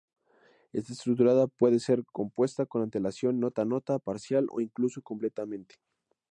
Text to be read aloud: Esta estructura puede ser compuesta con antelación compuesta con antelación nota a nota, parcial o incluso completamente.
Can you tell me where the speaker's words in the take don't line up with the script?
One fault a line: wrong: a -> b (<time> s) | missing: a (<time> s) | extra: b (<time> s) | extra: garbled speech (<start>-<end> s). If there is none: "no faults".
missing: compuesta con antelación (3.4 s)